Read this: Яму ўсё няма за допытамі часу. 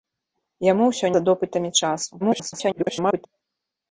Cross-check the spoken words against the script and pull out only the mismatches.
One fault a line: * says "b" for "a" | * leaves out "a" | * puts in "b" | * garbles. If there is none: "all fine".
* leaves out "няма"
* garbles